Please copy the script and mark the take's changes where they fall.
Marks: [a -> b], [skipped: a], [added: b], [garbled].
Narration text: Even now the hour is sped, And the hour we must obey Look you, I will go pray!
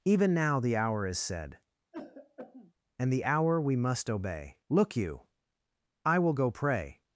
Even now the hour is [sped, -> said] And the hour we must obey Look you, I will go pray!